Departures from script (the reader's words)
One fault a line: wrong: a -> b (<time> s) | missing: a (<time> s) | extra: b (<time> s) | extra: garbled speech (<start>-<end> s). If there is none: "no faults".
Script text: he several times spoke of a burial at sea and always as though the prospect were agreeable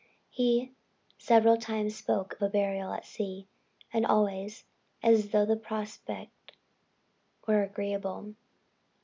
missing: of (2.4 s)